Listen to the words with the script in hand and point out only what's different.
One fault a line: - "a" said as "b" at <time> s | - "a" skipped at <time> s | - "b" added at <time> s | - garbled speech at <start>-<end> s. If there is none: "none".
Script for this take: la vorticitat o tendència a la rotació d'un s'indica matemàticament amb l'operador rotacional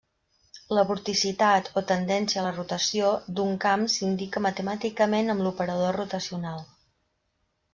- "camp" added at 3.7 s